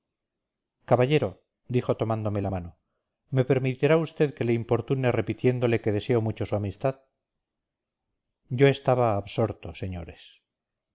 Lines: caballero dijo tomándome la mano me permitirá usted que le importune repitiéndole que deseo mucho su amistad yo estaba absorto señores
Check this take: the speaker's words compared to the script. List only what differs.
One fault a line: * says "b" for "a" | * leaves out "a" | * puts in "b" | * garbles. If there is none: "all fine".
all fine